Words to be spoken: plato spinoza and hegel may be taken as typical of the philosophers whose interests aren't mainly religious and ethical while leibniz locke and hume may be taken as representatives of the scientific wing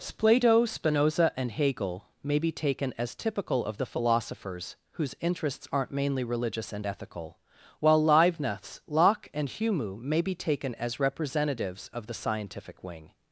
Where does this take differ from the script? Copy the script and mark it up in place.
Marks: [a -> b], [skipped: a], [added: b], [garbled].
plato spinoza and hegel may be taken as typical of the philosophers whose interests aren't mainly religious and ethical while leibniz locke and hume may be taken as representatives of the scientific wing